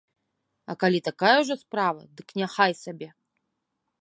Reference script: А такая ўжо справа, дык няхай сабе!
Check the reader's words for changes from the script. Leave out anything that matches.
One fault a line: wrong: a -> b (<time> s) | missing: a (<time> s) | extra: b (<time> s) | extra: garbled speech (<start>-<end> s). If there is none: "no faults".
extra: калі (0.8 s)